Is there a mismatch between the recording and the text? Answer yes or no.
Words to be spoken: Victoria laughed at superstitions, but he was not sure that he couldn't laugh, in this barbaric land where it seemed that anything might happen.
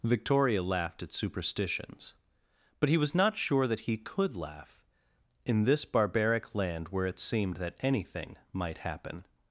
yes